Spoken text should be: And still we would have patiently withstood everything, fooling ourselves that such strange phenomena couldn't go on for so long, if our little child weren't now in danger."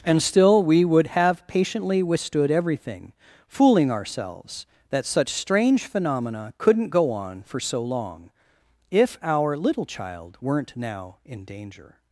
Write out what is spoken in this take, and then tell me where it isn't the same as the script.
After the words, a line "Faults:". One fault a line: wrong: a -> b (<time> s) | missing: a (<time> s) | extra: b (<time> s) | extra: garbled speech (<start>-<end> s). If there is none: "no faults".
And still we would have patiently withstood everything, fooling ourselves that such strange phenomena couldn't go on for so long, if our little child weren't now in danger."
Faults:
no faults